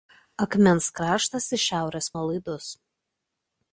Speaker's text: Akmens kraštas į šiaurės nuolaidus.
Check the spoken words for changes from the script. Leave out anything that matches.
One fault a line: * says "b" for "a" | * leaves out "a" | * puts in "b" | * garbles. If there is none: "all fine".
all fine